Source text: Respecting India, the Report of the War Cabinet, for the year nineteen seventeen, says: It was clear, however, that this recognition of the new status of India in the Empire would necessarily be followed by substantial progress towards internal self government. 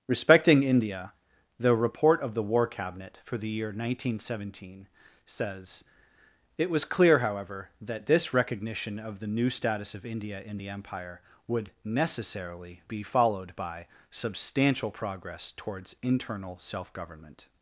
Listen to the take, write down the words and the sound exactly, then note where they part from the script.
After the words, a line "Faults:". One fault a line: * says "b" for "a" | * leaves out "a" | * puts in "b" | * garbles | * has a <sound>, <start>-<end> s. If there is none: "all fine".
Respecting India, the Report of the War Cabinet, for the year nineteen seventeen, says: It was clear, however, that this recognition of the new status of India in the Empire would necessarily be followed by substantial progress towards internal self government.
Faults:
all fine